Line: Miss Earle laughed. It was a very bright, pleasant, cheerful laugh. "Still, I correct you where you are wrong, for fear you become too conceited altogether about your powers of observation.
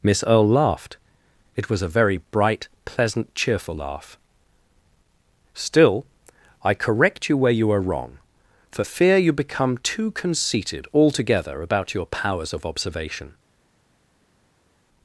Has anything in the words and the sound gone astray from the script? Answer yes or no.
no